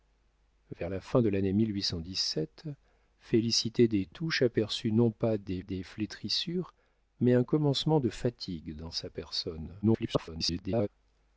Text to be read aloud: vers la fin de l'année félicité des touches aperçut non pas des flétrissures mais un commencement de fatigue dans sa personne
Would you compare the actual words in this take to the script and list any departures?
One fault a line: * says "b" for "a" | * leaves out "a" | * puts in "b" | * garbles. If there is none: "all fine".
* puts in "des"
* garbles